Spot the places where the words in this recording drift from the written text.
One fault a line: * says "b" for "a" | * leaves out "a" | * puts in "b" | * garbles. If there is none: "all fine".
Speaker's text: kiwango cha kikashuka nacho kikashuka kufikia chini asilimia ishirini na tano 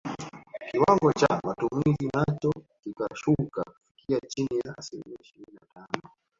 * says "matumizi" for "kikashuka"
* puts in "ya"